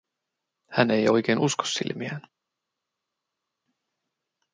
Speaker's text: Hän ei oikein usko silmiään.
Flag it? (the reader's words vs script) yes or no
no